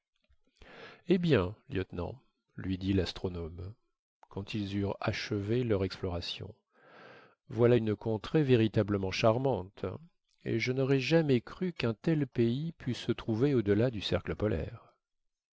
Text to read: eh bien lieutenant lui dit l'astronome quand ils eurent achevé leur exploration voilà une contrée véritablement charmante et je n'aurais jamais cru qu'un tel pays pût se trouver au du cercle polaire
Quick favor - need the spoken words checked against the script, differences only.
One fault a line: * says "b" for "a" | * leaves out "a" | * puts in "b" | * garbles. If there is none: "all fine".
* puts in "delà"